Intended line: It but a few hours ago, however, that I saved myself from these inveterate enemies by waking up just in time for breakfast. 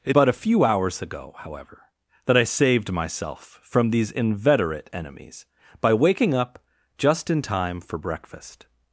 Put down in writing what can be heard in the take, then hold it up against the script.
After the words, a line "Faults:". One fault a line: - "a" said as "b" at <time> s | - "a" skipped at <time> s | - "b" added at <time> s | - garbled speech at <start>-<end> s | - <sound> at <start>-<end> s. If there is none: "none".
It but a few hours ago, however, that I saved myself from these inveterate enemies by waking up just in time for breakfast.
Faults:
none